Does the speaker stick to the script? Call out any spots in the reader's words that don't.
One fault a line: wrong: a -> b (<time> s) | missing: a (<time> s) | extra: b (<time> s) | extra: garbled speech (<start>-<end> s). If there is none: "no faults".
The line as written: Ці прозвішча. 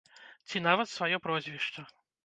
extra: нават сваё (0.7 s)